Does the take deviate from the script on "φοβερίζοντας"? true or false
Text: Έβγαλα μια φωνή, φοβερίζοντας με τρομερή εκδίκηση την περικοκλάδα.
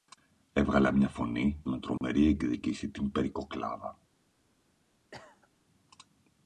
true